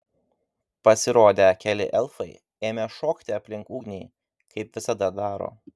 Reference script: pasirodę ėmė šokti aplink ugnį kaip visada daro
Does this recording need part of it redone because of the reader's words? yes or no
yes